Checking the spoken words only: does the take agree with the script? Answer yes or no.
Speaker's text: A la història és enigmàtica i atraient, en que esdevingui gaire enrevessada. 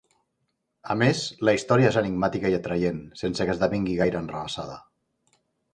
no